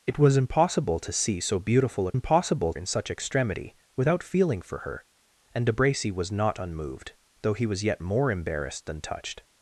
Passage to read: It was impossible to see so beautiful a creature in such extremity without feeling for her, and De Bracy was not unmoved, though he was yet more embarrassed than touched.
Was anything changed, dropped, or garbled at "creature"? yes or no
yes